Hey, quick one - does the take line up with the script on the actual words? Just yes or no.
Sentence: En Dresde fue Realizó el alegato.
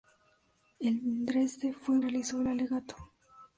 yes